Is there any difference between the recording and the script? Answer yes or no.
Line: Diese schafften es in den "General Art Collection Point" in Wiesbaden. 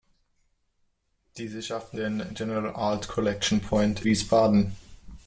yes